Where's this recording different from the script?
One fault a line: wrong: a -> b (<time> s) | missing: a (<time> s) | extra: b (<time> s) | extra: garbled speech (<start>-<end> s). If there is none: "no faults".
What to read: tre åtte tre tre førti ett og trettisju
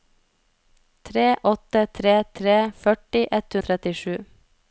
no faults